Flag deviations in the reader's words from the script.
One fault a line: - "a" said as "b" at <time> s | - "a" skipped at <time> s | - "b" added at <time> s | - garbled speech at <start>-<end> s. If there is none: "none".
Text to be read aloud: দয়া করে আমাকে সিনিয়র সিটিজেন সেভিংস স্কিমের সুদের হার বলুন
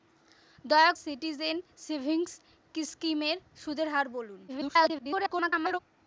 - "করে আমাকে সিনিয়র" skipped at 0.9 s
- garbled speech at 4.5-5.8 s